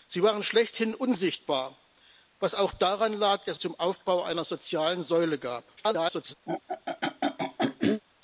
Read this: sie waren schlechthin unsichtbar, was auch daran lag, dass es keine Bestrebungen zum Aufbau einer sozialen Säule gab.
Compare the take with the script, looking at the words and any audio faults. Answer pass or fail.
fail